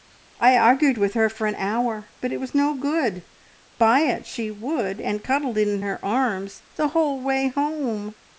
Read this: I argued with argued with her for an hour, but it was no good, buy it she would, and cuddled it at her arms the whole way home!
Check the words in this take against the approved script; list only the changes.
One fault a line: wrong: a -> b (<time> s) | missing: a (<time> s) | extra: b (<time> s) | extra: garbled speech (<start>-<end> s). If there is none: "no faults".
missing: argued with (1.1 s)
wrong: at -> in (5.7 s)